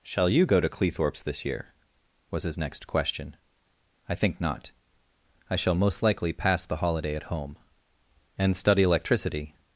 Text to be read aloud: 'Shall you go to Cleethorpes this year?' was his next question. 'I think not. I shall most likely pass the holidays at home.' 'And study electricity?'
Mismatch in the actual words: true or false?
true